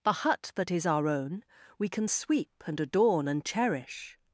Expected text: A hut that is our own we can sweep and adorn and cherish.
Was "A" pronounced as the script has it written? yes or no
no